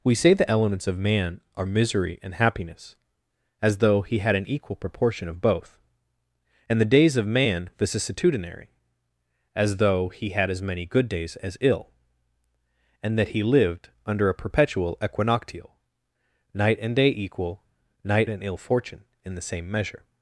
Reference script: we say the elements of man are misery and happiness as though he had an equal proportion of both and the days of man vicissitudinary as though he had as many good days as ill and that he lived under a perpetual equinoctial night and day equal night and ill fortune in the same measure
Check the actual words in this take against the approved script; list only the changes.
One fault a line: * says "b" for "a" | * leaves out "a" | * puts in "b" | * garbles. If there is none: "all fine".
all fine